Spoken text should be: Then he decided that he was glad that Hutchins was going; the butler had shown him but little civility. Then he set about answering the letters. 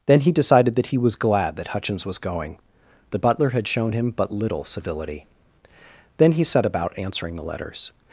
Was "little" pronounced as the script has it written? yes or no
yes